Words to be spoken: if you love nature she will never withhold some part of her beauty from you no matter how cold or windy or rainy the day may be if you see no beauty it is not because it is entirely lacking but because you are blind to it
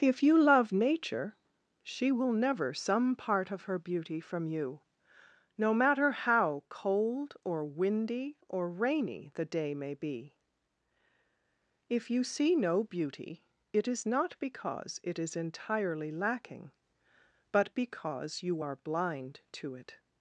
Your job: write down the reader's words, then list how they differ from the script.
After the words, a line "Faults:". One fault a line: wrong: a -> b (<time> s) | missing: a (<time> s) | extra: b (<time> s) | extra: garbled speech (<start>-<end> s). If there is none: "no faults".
if you love nature she will never some part of her beauty from you no matter how cold or windy or rainy the day may be if you see no beauty it is not because it is entirely lacking but because you are blind to it
Faults:
missing: withhold (2.7 s)